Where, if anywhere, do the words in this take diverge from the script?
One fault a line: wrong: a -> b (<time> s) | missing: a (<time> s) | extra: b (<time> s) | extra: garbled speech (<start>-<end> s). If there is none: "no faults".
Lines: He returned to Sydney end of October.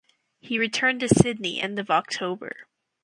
no faults